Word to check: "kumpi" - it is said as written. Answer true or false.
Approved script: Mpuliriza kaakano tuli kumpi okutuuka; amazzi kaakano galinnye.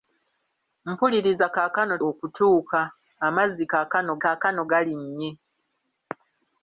false